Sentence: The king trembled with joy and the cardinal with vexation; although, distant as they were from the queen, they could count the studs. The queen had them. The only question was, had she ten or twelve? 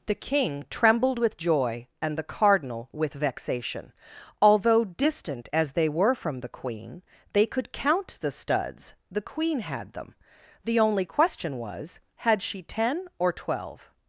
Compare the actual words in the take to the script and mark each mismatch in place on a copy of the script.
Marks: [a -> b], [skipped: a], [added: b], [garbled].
The king trembled with joy and the cardinal with vexation; although, distant as they were from the queen, they could count the studs. The queen had them. The only question was, had she ten or twelve?